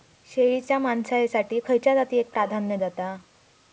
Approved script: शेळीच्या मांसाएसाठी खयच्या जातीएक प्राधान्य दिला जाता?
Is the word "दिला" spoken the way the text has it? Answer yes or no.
no